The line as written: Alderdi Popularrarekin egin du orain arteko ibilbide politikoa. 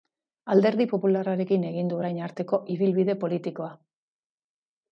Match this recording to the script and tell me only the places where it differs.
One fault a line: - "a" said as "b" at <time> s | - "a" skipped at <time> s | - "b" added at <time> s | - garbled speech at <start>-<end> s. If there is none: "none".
none